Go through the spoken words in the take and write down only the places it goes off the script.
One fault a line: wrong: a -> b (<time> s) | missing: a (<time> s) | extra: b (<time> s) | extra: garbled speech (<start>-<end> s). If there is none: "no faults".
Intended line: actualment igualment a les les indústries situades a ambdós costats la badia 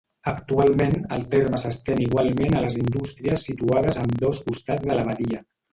extra: el terme s'estén (1.2 s)
missing: les (2.8 s)
extra: de (4.9 s)